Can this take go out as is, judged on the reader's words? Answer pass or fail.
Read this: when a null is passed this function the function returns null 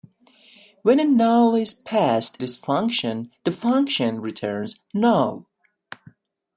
pass